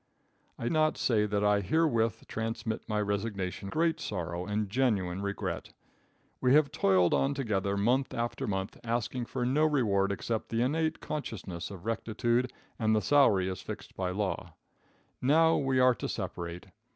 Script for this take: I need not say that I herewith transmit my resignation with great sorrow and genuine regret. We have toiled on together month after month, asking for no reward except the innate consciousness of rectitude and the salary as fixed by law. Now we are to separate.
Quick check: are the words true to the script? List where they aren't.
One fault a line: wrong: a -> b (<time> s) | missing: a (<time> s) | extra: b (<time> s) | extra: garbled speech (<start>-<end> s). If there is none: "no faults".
missing: need (0.7 s)
missing: with (3.7 s)